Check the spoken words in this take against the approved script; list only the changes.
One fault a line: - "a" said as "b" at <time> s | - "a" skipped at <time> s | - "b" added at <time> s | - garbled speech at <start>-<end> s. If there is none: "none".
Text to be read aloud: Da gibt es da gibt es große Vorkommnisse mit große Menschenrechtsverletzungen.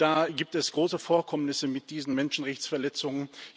- "da gibt es" skipped at 0.7 s
- "große" said as "diesen" at 1.9 s